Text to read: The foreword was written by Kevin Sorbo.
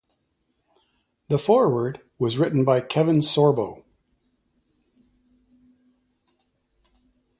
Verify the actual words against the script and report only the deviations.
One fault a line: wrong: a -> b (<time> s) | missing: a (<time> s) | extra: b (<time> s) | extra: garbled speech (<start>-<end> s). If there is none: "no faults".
no faults